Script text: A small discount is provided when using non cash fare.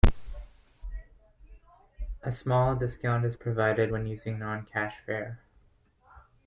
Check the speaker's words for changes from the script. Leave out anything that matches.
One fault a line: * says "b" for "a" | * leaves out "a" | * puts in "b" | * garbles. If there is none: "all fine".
all fine